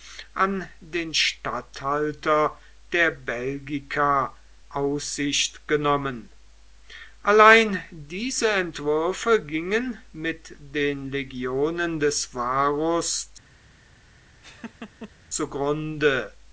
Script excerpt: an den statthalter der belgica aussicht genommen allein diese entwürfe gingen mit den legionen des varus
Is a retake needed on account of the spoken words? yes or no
no